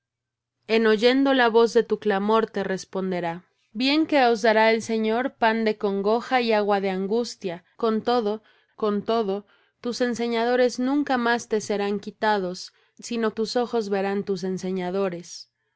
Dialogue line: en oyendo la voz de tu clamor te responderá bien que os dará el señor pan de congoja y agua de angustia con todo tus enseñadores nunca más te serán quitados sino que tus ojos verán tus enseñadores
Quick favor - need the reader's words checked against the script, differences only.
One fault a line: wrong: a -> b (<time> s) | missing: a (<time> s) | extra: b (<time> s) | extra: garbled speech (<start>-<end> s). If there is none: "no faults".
extra: con todo (8.7 s)
missing: que (13.3 s)